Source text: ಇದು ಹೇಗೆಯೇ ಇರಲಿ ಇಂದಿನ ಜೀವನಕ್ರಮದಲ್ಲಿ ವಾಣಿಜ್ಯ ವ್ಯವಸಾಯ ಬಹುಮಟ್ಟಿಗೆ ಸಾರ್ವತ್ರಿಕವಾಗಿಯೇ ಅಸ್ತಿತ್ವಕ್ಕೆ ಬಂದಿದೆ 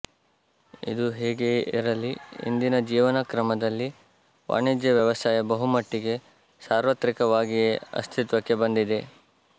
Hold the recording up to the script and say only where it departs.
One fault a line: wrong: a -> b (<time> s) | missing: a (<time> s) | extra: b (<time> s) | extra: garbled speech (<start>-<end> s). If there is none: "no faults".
no faults